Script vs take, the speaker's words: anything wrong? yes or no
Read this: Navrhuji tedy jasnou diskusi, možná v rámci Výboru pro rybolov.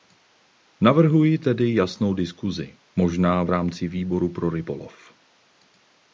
no